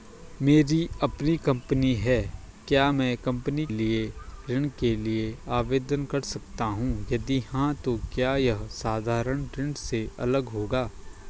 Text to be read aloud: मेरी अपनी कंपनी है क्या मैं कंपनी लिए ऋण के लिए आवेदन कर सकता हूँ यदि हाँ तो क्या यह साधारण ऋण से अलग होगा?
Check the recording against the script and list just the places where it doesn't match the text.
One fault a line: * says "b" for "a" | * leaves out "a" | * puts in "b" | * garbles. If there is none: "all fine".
all fine